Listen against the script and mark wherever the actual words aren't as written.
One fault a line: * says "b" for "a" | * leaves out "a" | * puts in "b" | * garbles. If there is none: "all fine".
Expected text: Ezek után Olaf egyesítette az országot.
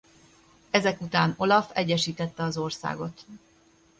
all fine